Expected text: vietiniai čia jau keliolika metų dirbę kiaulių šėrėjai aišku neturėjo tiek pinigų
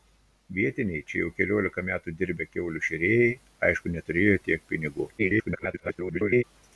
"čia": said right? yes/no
yes